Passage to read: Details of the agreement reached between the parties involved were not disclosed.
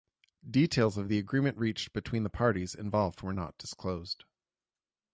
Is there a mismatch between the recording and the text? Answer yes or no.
no